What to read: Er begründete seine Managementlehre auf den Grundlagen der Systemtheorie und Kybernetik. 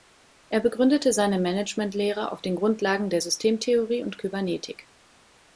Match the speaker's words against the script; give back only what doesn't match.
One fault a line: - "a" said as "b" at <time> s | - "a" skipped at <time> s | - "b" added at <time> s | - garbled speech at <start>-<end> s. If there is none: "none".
none